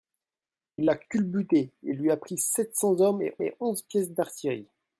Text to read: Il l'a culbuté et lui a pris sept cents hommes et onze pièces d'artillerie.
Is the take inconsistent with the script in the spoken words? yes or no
yes